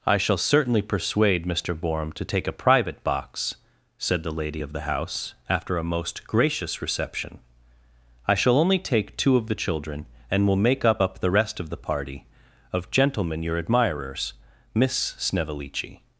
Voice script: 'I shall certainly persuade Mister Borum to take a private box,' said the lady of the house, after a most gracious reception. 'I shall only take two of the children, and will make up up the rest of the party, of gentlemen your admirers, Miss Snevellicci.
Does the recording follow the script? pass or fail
pass